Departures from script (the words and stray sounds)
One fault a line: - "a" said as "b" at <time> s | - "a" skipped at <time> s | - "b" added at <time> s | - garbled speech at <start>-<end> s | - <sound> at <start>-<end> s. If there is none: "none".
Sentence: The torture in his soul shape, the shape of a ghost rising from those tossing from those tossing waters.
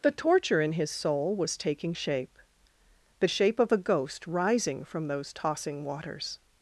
- "was taking" added at 1.4 s
- "from those tossing" skipped at 5.8 s